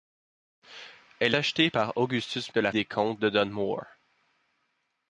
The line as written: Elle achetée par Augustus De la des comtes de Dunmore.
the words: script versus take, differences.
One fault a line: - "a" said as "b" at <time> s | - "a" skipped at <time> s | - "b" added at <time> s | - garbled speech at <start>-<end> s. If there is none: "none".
none